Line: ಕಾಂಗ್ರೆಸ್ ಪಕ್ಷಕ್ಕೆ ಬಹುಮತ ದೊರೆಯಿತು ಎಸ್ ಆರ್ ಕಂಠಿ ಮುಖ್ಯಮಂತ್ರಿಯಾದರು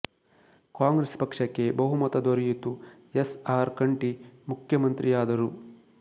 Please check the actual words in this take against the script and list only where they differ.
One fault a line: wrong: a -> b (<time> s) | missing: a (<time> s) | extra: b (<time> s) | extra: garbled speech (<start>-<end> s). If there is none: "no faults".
no faults